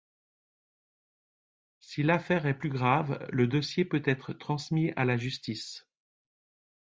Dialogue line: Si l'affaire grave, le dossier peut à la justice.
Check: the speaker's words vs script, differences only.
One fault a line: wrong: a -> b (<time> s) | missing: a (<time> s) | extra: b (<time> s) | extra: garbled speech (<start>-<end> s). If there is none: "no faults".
extra: est plus (2.5 s)
extra: être transmis (4.1 s)